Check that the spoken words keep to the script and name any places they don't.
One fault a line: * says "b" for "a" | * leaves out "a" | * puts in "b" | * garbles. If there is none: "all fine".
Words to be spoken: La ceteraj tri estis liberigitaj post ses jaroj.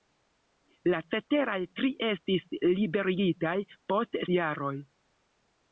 * leaves out "ses"